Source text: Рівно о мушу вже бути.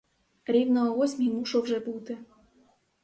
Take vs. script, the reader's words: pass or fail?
fail